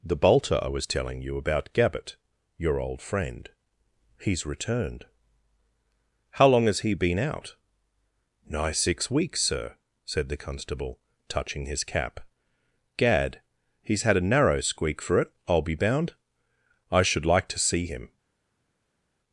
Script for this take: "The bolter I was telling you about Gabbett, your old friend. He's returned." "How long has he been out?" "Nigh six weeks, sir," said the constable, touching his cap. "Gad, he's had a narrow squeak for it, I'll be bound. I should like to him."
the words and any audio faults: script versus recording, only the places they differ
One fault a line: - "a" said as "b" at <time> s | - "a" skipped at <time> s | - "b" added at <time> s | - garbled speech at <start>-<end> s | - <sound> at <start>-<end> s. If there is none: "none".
- "see" added at 17.6 s